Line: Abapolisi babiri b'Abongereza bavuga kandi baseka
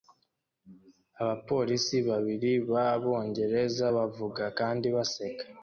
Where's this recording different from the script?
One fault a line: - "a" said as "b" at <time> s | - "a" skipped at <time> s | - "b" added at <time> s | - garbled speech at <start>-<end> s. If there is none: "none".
none